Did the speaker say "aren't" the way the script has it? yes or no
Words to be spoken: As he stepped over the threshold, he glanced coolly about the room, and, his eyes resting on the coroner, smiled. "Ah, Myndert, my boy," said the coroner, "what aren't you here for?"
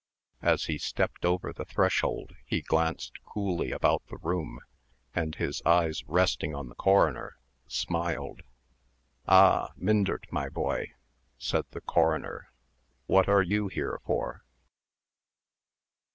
no